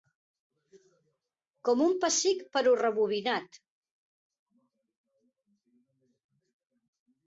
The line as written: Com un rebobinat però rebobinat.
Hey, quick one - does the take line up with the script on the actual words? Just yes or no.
no